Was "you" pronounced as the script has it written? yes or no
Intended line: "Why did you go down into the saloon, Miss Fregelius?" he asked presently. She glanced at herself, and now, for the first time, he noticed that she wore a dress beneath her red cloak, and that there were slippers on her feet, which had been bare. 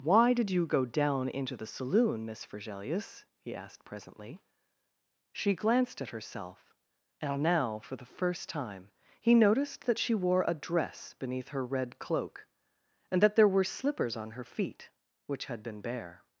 yes